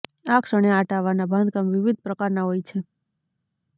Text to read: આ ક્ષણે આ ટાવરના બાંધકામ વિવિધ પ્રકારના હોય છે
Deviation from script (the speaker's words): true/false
false